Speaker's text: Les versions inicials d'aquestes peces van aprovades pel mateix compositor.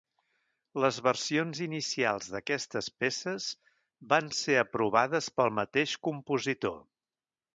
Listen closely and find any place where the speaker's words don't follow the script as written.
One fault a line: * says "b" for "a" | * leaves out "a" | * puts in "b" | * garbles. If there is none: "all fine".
* puts in "ser"